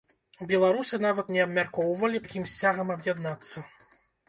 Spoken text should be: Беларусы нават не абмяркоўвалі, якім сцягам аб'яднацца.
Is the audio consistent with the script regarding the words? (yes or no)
yes